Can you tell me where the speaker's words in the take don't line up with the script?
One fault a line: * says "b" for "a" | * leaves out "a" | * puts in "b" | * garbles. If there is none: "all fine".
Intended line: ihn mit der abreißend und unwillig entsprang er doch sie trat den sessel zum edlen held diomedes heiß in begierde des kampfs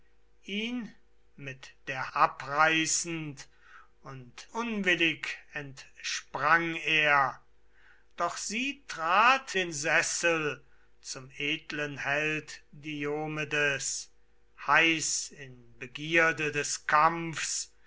all fine